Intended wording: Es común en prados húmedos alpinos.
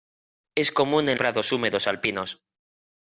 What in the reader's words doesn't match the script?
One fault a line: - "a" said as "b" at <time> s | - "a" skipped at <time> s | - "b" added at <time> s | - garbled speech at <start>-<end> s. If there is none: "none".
none